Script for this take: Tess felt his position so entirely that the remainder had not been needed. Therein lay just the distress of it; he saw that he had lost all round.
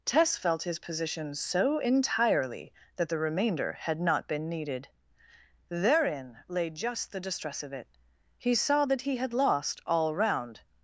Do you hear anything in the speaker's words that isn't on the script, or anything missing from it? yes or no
no